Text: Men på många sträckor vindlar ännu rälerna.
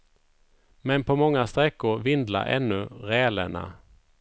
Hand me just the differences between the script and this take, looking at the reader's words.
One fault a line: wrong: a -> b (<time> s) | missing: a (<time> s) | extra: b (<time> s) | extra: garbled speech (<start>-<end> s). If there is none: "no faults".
no faults